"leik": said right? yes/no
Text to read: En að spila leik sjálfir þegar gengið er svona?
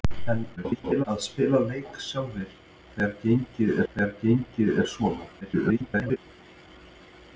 yes